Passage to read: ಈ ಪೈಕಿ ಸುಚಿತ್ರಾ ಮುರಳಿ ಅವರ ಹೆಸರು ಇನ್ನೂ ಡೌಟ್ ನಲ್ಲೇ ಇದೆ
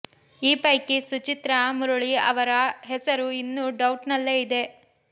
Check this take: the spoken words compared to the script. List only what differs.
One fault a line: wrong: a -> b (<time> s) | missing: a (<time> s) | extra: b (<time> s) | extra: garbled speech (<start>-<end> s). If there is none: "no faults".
no faults